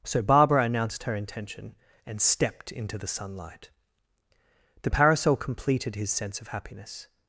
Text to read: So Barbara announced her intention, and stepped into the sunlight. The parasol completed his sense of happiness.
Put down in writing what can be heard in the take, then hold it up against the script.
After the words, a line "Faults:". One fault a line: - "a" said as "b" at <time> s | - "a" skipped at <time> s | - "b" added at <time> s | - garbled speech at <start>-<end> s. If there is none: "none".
So Barbara announced her intention, and stepped into the sunlight. The parasol completed his sense of happiness.
Faults:
none